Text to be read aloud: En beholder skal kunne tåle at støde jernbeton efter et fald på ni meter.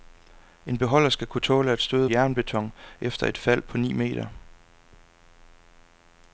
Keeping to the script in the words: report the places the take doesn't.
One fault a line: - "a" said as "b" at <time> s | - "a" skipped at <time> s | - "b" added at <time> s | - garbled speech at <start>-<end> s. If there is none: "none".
none